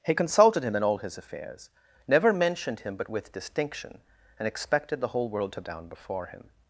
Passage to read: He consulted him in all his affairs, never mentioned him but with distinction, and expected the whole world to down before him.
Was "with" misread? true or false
false